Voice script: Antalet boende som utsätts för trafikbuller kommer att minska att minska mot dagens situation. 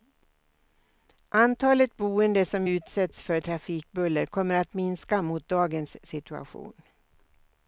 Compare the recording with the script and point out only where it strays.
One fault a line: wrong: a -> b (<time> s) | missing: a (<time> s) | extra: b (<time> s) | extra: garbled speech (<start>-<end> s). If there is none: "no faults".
missing: att minska (5.2 s)